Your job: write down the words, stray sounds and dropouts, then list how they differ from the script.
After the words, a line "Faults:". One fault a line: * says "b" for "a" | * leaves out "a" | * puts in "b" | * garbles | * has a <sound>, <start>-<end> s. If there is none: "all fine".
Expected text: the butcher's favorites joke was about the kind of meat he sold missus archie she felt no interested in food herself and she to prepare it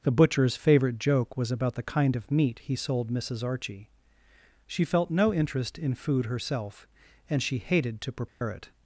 the butcher's favorite joke was about the kind of meat he sold missus archie she felt no interest in food herself and she hated to prepare it
Faults:
* says "favorite" for "favorites"
* says "interest" for "interested"
* puts in "hated"
* has a dropout, 8.3-8.4 s